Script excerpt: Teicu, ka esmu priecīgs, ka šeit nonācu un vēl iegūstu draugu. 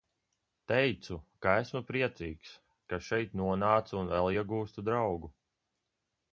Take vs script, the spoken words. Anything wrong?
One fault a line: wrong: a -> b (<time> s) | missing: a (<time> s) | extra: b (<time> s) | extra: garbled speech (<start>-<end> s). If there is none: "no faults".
no faults